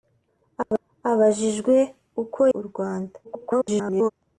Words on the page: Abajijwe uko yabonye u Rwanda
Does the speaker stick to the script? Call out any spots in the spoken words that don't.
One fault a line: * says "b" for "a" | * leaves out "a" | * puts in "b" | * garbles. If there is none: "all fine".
* leaves out "yabonye"
* garbles